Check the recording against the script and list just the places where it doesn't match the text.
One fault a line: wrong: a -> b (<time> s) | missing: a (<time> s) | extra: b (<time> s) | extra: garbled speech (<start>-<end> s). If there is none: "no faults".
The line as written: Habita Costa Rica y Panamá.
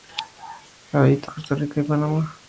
no faults